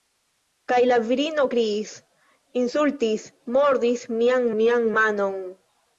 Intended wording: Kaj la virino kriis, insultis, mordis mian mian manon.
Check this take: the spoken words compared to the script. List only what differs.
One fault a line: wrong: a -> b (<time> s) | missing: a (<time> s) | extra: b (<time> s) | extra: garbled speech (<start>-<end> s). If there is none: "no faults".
no faults